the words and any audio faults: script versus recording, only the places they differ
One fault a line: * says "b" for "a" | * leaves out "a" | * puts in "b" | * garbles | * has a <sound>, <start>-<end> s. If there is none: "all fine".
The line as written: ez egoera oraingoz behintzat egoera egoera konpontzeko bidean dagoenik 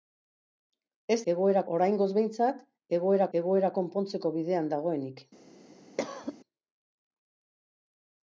* has a cough, 6.0-6.4 s